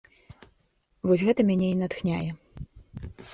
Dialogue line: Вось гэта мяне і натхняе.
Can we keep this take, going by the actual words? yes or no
yes